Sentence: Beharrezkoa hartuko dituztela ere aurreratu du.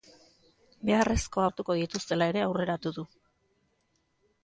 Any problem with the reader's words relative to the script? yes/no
no